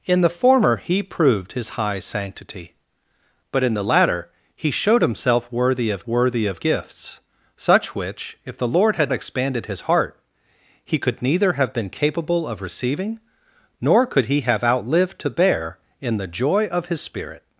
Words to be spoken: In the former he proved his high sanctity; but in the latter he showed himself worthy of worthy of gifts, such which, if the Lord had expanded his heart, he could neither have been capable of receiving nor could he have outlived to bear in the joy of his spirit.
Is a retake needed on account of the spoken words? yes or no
no